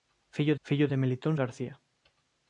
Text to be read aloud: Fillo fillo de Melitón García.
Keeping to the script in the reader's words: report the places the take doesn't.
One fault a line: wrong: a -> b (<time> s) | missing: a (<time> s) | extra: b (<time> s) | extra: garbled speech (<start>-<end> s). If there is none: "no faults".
no faults